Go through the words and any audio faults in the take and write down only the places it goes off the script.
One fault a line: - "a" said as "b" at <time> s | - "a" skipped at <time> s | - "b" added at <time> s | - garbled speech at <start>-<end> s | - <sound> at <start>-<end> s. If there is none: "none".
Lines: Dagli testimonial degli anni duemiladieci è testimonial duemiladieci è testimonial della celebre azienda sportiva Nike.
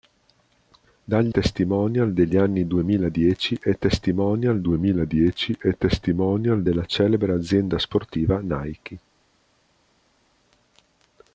none